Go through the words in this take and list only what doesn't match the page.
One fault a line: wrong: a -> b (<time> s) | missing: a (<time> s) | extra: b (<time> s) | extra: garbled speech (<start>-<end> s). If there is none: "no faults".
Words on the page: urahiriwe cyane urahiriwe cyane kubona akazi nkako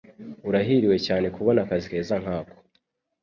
missing: urahiriwe cyane (1.3 s)
extra: keza (1.9 s)